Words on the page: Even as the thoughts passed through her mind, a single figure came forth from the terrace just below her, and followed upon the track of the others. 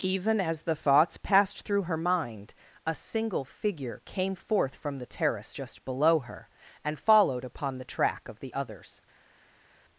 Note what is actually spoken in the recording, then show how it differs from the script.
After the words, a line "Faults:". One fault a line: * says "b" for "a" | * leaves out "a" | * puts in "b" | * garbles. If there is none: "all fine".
Even as the thoughts passed through her mind, a single figure came forth from the terrace just below her, and followed upon the track of the others.
Faults:
all fine